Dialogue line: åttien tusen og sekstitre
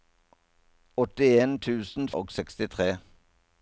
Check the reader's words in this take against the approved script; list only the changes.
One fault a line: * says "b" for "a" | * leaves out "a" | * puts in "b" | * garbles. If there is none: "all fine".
all fine